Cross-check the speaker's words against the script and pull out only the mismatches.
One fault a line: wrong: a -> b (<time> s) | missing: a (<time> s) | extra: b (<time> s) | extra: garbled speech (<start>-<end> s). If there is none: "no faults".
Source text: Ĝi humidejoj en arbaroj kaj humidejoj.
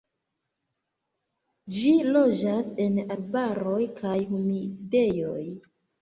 wrong: humidejoj -> loĝas (2.1 s)